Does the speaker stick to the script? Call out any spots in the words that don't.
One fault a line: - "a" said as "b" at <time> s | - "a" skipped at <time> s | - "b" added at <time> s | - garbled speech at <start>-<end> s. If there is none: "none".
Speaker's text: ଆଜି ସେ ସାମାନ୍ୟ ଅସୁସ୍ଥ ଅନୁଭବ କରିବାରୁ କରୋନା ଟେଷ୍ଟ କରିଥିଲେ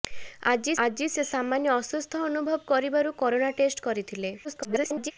- "ଆଜି" added at 0.8 s
- garbled speech at 4.4-5.1 s